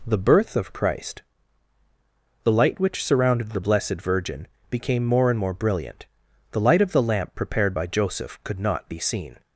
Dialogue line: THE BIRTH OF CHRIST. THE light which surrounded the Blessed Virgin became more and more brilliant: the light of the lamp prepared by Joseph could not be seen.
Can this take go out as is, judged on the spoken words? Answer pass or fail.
pass